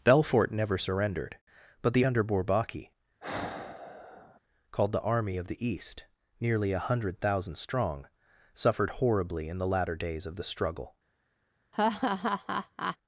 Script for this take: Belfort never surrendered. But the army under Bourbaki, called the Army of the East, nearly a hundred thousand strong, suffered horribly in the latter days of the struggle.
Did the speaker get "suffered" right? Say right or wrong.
right